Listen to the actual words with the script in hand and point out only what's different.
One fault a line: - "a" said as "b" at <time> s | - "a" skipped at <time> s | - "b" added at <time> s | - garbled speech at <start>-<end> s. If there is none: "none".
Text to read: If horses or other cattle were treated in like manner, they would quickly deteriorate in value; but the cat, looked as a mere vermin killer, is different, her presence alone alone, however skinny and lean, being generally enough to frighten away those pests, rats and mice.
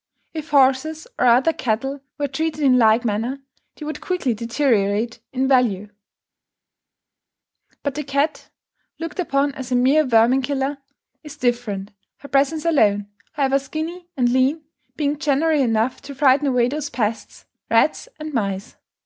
- "upon" added at 9.2 s
- "alone" skipped at 13.1 s